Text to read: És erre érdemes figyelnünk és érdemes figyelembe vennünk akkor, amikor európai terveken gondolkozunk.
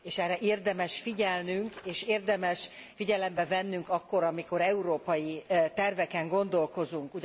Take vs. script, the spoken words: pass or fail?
pass